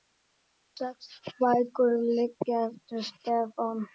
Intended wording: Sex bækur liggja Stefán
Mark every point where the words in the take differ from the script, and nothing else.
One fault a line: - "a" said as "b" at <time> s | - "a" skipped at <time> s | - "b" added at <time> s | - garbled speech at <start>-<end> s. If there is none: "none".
- "eftir" added at 2.7 s